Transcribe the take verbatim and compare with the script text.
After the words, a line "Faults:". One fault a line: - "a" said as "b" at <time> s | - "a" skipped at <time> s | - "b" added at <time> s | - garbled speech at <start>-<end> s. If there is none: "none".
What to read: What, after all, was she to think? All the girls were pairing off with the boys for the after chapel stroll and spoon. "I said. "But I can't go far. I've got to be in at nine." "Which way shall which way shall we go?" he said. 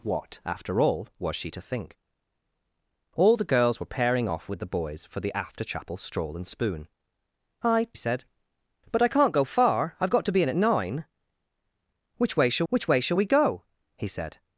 What, after all, was she to think? All the girls were pairing off with the boys for the after chapel stroll and spoon. "I said. "But I can't go far. I've got to be in at nine." "Which way shall which way shall we go?" he said.
Faults:
none